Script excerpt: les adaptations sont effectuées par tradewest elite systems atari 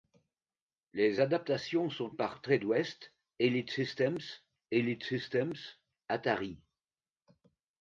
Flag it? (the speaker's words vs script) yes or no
yes